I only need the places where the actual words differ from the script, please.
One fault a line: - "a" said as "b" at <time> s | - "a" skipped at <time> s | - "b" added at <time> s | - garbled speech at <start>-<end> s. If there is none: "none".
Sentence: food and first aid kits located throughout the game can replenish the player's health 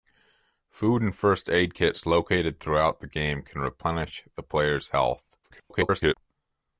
- garbled speech at 5.4-6.1 s